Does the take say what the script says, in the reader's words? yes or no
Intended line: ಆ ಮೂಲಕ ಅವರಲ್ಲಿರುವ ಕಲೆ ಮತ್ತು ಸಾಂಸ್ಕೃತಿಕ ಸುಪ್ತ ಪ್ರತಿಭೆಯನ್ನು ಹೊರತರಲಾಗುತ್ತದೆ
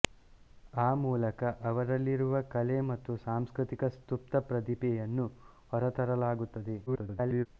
no